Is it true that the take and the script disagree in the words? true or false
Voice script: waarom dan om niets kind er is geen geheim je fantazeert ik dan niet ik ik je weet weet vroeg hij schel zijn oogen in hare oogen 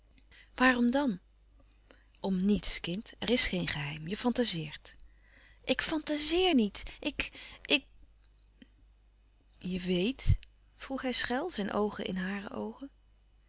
true